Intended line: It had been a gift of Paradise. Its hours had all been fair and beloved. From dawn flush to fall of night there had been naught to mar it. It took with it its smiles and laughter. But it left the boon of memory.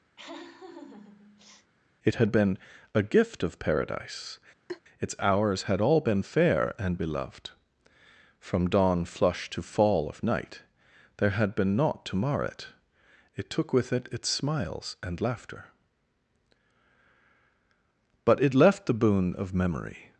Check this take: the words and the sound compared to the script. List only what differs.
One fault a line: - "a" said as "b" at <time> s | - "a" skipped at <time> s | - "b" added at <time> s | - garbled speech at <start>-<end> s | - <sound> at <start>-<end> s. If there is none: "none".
- laugh at 0.2-1.7 s
- laugh at 4.7-4.8 s